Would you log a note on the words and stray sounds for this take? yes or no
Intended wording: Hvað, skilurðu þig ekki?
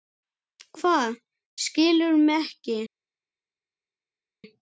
yes